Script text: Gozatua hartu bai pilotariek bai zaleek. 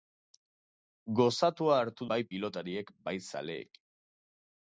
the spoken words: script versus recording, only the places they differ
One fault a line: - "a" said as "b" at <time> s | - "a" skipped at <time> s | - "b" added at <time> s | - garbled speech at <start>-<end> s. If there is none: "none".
none